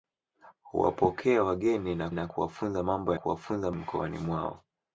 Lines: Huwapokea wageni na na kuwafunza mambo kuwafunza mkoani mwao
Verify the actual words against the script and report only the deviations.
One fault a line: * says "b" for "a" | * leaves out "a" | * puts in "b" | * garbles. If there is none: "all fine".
all fine